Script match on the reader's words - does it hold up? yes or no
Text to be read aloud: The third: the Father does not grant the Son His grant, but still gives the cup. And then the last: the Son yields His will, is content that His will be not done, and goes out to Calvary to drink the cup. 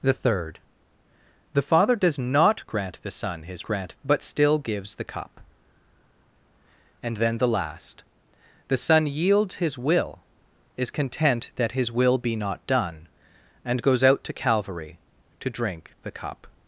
yes